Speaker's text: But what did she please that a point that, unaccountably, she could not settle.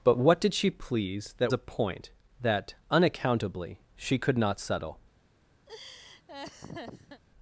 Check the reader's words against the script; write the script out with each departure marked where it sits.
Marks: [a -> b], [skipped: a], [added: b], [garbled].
But what did she please that a point that, unaccountably, she could not settle.